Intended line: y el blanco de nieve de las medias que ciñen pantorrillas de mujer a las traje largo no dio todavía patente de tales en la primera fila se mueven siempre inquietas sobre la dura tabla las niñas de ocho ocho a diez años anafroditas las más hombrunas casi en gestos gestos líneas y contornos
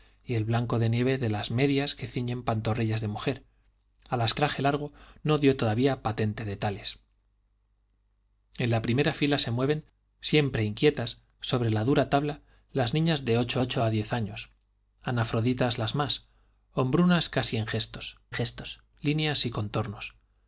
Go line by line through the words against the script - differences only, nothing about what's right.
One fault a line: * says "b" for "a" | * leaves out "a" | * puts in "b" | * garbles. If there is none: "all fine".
all fine